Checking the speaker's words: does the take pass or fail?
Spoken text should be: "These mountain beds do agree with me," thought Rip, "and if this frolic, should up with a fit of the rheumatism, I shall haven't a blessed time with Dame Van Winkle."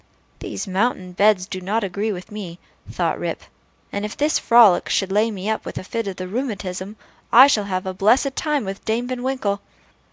fail